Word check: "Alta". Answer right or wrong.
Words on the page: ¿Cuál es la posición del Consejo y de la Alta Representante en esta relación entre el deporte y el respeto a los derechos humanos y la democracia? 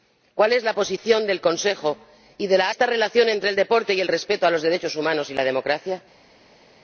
wrong